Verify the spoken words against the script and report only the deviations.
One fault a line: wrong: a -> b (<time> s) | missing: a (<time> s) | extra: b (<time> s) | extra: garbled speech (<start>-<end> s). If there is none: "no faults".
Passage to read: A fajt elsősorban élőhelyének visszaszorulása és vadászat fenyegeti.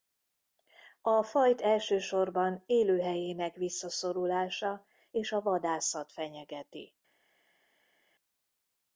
extra: a (5.3 s)